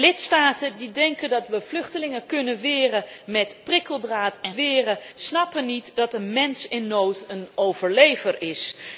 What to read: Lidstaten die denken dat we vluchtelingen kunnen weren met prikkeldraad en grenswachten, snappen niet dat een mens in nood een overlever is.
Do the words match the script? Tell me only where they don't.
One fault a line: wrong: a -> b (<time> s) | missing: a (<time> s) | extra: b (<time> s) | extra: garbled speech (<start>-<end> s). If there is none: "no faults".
wrong: grenswachten -> weren (4.5 s)